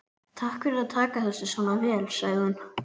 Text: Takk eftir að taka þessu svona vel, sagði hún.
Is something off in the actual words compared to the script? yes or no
yes